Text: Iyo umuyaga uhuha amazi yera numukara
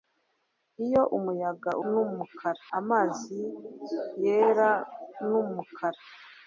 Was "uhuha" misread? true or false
true